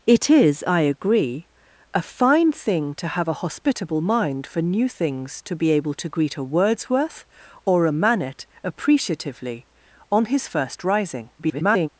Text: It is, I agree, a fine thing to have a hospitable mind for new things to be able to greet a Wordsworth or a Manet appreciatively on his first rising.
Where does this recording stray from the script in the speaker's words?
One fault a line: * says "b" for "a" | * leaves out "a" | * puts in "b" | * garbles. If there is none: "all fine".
* garbles